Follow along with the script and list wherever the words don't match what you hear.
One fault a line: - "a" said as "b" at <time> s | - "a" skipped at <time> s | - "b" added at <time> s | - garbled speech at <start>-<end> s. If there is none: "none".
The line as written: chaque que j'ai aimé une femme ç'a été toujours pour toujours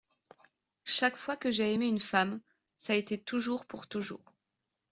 - "fois" added at 1.1 s